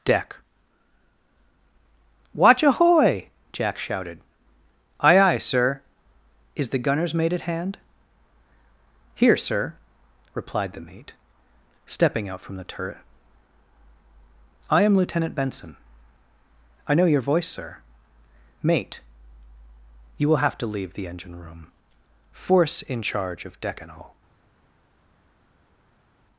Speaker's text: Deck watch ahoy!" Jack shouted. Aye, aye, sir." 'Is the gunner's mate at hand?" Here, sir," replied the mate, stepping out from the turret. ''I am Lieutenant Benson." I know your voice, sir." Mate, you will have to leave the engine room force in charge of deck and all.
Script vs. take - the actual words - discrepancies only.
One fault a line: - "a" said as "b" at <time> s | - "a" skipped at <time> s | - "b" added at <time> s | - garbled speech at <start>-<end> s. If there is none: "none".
none